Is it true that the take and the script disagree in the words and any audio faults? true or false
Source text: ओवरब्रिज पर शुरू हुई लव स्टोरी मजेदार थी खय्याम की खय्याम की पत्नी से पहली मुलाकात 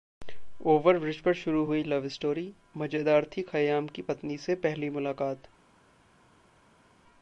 true